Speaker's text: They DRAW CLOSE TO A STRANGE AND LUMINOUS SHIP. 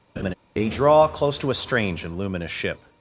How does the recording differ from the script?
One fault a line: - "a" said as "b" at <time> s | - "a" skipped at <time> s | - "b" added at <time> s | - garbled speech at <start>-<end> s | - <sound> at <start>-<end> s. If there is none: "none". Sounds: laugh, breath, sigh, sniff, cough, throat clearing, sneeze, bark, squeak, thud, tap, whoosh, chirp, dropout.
- laugh at 0.2-0.3 s